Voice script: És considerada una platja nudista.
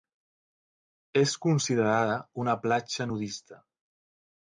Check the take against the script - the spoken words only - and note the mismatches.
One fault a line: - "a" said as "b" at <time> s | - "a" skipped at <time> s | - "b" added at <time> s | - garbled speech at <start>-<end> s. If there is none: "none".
none